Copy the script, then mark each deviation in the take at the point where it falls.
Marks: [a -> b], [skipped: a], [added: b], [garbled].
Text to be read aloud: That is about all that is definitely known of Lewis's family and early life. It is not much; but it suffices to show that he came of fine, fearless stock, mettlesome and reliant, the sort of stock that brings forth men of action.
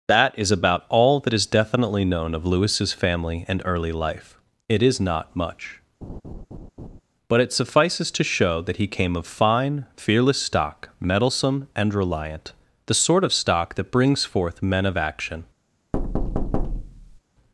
That is about all that is definitely known of Lewis's family and early life. It is not much; but it suffices to show that he came of fine, fearless stock, mettlesome and reliant, the sort of stock that brings forth men of action.